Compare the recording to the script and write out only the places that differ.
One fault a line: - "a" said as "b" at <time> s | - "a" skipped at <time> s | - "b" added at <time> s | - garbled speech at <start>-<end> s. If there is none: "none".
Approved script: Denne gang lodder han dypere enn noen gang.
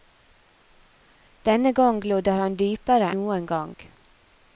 - "enn" skipped at 3.1 s